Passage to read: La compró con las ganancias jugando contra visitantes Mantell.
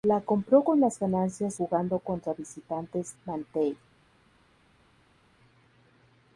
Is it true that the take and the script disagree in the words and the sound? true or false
false